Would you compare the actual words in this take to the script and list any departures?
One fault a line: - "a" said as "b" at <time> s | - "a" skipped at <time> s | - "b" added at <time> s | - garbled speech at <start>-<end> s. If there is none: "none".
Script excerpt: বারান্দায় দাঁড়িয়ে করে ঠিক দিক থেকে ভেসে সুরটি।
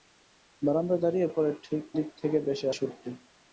none